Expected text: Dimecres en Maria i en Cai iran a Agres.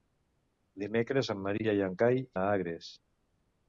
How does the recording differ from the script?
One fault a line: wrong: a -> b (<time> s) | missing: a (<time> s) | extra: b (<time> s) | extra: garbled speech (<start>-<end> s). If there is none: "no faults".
missing: iran (2.2 s)